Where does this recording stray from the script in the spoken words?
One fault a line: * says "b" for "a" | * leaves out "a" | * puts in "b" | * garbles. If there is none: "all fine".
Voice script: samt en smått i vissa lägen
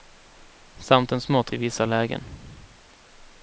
all fine